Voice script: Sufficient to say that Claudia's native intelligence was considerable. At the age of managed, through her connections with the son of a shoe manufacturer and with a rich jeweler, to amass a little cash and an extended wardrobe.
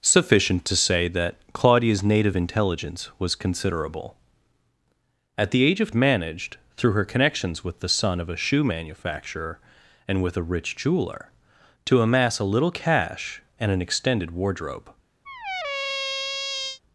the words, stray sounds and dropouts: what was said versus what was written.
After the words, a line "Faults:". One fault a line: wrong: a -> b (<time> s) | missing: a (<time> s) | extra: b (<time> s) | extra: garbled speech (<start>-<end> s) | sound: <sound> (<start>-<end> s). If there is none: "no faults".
Sufficient to say that Claudia's native intelligence was considerable. At the age of managed, through her connections with the son of a shoe manufacturer and with a rich jeweler, to amass a little cash and an extended wardrobe.
Faults:
sound: squeak (15.2-16.8 s)